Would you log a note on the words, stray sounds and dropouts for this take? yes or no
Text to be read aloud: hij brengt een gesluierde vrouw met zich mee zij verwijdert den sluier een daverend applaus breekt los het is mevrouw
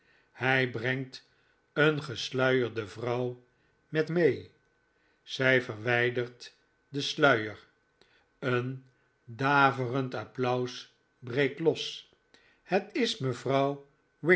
yes